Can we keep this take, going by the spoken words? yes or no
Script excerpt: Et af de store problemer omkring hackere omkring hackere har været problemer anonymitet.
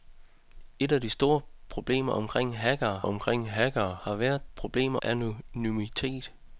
yes